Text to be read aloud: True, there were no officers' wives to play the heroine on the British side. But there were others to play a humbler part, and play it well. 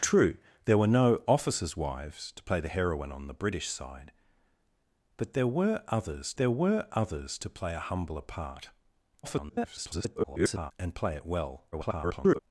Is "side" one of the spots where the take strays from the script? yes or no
no